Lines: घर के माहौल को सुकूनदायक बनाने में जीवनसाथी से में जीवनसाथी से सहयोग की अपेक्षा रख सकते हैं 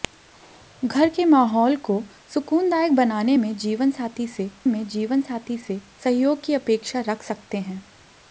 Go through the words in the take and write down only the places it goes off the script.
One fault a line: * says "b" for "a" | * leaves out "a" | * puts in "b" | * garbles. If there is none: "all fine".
all fine